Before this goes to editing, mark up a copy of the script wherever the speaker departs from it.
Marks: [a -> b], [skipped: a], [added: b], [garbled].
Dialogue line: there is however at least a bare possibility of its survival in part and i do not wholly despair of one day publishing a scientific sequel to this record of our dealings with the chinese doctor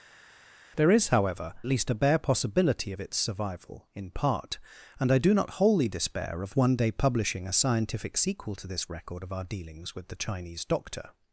there is however [skipped: at] least a bare possibility of its survival in part and i do not wholly despair of one day publishing a scientific sequel to this record of our dealings with the chinese doctor